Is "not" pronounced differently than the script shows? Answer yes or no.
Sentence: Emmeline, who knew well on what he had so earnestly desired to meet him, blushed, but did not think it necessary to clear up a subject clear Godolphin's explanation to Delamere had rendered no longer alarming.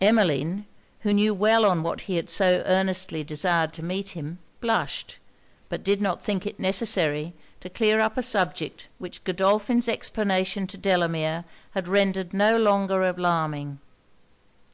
no